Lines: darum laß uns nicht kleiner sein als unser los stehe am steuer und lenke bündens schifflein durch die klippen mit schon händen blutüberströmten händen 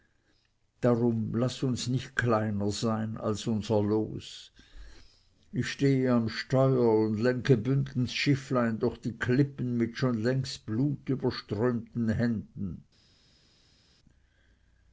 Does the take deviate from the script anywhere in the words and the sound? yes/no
yes